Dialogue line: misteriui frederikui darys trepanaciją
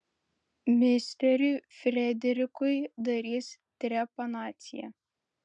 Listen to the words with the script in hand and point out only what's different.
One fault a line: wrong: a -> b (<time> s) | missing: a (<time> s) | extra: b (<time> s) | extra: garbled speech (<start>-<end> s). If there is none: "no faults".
no faults